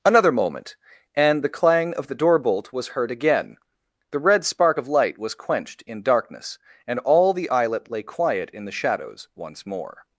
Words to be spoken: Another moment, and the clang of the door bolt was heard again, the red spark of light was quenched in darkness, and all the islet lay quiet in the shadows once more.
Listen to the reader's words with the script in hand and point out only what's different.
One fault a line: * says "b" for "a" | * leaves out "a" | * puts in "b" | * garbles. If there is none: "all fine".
all fine